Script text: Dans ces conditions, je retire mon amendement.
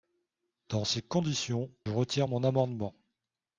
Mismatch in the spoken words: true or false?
true